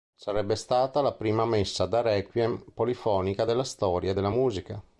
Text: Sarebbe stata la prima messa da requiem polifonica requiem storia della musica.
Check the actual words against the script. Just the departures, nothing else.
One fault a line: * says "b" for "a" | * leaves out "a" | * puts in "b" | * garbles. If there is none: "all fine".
* says "della" for "requiem"